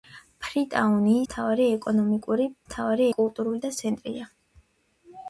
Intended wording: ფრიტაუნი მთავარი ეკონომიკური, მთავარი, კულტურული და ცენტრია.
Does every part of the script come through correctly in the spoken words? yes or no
yes